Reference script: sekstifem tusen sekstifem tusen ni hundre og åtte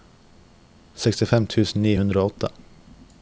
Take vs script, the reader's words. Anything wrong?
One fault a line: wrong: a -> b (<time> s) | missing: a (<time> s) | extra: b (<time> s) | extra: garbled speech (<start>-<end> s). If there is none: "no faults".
missing: sekstifem tusen (1.9 s)